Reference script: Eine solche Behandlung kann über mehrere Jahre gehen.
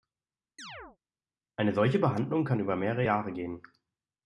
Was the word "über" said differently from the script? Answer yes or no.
no